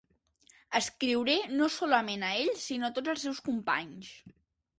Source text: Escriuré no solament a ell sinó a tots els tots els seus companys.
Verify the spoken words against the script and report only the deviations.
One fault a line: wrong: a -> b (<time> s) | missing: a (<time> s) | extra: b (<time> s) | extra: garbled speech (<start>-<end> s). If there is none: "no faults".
missing: tots els (3.3 s)